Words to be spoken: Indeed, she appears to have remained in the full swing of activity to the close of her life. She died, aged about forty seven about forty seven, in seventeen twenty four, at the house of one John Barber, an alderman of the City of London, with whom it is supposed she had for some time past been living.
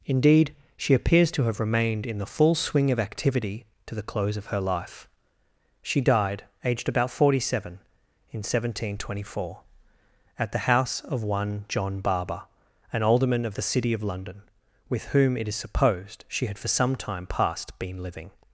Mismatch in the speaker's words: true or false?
true